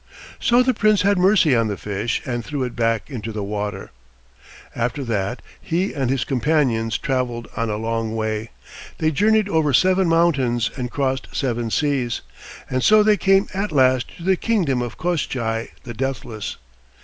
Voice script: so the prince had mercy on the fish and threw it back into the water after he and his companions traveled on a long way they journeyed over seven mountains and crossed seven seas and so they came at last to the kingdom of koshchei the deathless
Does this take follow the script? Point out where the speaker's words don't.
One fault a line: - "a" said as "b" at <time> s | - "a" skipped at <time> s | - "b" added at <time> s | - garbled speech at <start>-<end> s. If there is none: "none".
- "that" added at 5.0 s